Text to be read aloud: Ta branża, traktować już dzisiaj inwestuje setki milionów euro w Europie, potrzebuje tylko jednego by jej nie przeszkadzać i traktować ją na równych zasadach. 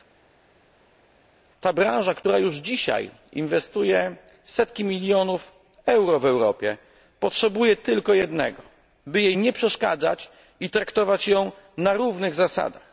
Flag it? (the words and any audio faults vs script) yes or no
yes